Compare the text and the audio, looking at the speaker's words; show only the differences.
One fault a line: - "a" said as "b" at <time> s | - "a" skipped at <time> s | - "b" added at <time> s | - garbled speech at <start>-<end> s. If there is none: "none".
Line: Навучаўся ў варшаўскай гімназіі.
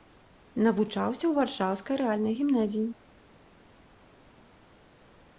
- "рэальнай" added at 2.0 s